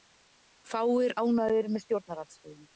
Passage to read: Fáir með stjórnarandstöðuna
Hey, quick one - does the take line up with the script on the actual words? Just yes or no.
no